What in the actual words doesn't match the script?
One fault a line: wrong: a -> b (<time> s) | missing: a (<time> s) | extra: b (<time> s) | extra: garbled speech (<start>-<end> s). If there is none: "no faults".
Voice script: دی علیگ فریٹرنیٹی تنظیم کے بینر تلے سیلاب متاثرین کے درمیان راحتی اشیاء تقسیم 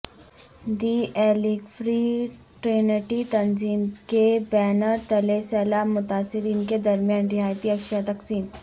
no faults